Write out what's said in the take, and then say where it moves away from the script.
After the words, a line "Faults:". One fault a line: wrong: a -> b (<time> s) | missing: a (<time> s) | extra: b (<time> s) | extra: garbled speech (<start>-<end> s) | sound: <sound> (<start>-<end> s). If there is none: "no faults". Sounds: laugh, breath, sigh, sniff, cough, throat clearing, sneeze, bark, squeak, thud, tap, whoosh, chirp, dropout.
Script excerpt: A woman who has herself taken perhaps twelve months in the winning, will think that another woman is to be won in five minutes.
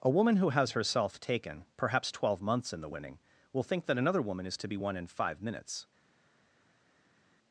A woman who has herself taken perhaps twelve months in the winning, will think that another woman is to be won in five minutes.
Faults:
no faults